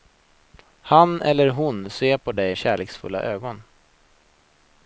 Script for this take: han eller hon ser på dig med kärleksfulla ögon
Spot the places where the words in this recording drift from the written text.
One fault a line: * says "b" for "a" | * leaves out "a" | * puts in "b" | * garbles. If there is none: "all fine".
* leaves out "med"